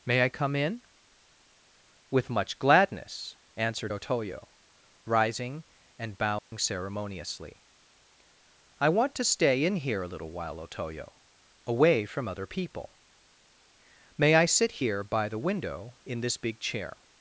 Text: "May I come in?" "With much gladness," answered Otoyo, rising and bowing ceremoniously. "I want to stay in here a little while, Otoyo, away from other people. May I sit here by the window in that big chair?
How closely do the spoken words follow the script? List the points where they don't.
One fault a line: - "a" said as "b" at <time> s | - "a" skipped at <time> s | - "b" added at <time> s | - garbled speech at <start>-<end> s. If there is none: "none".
- "that" said as "this" at 16.2 s